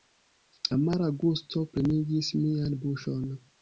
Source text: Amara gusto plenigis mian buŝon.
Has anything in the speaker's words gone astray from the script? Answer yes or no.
no